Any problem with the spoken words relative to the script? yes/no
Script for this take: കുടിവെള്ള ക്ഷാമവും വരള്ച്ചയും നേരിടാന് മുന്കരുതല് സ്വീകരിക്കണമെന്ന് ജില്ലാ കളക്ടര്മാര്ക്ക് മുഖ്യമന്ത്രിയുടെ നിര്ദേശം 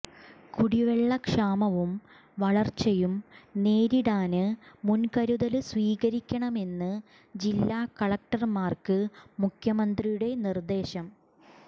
no